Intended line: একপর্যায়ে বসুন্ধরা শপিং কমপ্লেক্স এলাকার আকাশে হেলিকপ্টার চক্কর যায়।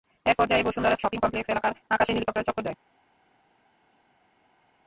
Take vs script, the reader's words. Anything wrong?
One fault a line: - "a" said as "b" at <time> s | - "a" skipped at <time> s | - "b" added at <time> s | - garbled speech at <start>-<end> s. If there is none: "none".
none